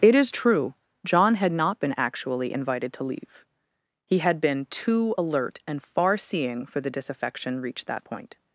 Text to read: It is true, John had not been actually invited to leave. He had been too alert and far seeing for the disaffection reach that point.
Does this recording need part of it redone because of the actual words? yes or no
no